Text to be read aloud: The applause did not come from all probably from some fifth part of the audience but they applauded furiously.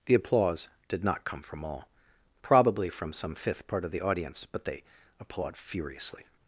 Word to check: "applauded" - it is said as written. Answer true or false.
false